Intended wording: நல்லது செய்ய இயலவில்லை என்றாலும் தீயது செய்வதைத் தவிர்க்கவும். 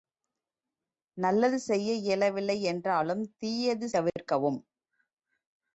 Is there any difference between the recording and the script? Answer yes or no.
yes